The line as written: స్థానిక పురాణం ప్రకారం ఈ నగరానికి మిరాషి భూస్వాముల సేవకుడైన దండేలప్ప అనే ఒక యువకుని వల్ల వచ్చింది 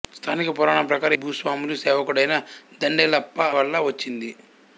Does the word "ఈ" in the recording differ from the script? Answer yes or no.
yes